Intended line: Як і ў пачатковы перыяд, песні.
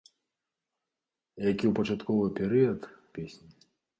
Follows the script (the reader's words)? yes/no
yes